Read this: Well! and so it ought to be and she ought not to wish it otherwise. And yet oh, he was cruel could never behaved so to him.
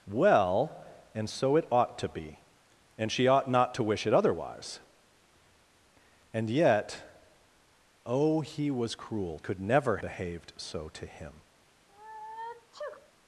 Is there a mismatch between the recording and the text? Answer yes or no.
no